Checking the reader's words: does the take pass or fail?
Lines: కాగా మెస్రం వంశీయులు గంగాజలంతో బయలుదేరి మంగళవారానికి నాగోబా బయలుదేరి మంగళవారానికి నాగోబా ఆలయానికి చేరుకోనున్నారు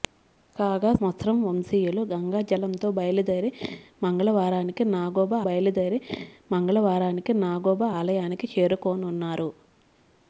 pass